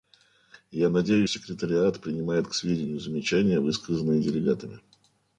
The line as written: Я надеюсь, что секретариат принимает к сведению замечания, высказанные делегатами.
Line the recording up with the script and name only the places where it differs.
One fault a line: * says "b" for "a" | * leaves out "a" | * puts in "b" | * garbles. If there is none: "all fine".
* leaves out "что"